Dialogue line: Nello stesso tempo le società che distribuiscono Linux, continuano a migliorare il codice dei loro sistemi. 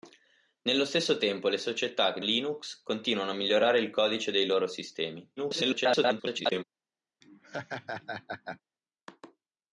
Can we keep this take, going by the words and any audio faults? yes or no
no